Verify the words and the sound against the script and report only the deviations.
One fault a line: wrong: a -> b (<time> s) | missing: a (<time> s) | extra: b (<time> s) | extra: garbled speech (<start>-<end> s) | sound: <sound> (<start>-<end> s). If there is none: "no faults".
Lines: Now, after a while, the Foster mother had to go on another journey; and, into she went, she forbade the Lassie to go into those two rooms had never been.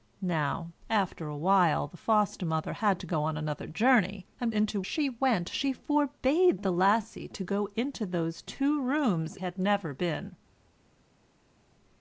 no faults